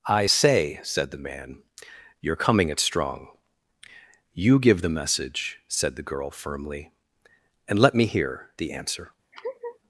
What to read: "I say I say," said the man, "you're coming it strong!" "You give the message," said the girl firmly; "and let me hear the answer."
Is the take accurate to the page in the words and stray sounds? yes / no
no